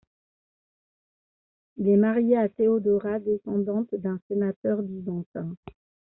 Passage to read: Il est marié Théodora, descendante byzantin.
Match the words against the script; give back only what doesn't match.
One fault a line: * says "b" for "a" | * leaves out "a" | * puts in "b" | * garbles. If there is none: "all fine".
* puts in "à"
* puts in "d'un sénateur"